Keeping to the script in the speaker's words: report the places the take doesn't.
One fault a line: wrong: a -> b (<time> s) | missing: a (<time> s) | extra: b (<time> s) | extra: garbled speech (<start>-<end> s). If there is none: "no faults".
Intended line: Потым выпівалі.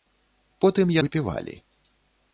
no faults